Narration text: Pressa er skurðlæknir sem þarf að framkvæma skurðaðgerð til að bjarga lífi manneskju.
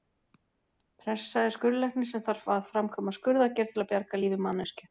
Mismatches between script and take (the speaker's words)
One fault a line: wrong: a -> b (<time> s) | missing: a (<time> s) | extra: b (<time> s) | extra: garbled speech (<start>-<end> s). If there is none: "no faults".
no faults